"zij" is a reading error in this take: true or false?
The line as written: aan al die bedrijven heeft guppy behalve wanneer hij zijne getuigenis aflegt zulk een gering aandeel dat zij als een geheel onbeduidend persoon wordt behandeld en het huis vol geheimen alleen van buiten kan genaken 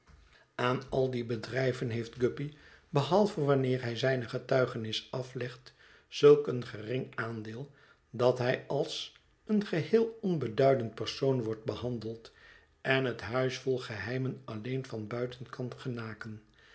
true